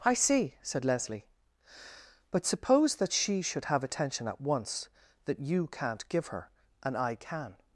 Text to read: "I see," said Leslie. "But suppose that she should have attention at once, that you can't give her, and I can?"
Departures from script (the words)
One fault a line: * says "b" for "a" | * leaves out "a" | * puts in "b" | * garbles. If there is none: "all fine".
all fine